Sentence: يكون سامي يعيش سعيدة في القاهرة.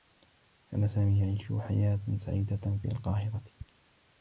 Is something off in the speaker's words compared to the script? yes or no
yes